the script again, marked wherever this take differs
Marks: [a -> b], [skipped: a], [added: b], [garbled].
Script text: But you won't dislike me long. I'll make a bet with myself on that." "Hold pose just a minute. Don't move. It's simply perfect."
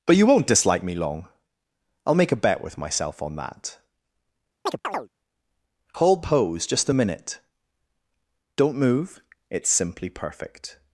But you won't dislike me long. I'll make a bet with myself on that." "Hold pose just a minute. Don't move. It's simply perfect."